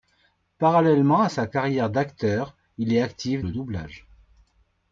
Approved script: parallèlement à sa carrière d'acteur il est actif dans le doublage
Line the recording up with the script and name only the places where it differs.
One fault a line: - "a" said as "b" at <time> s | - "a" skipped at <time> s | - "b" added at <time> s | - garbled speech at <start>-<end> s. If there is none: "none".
- "dans" skipped at 3.5 s